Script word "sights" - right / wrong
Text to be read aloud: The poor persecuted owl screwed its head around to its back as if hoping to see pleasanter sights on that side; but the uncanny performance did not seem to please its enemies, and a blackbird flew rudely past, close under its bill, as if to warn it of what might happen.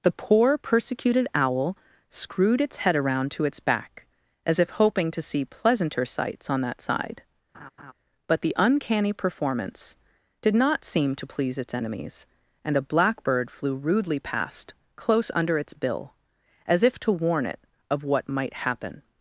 right